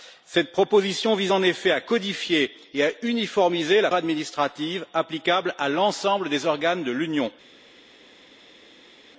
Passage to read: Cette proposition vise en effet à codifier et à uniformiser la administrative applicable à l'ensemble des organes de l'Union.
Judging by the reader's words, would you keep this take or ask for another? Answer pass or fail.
pass